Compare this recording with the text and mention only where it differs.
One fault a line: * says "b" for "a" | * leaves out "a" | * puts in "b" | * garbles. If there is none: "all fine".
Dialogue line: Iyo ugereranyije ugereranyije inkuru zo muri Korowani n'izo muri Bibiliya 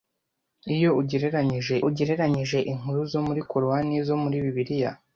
all fine